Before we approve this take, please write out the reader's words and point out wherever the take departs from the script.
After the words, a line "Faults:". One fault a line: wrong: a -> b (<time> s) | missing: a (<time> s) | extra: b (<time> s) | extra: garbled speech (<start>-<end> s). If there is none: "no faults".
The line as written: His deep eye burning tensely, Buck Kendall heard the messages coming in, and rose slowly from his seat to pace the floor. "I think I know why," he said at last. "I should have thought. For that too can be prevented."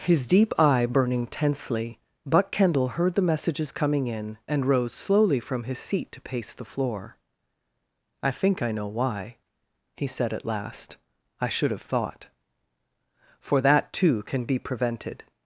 His deep eye burning tensely, Buck Kendall heard the messages coming in, and rose slowly from his seat to pace the floor. "I think I know why," he said at last. "I should have thought. For that too can be prevented."
Faults:
no faults